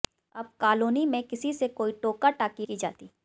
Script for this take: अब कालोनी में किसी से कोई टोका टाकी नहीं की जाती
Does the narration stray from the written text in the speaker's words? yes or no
yes